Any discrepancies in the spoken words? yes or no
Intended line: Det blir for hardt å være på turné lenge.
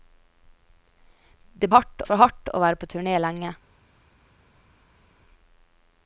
yes